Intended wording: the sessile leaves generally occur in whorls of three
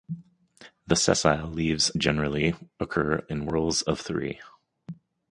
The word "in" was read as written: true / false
true